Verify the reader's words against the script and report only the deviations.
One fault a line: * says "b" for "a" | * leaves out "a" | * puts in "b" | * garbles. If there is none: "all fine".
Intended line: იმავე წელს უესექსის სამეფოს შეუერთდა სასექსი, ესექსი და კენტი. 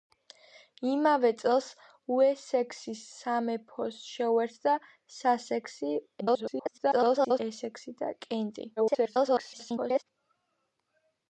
* garbles
* garbles